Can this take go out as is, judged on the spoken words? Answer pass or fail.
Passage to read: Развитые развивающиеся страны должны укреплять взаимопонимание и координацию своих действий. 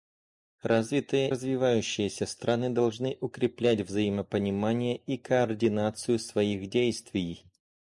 pass